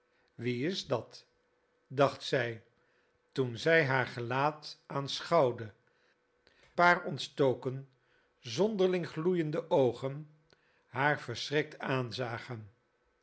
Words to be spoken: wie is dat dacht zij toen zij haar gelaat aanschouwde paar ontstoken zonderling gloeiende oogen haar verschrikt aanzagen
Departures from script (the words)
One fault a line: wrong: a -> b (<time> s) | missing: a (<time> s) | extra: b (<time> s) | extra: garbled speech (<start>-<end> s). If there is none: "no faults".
no faults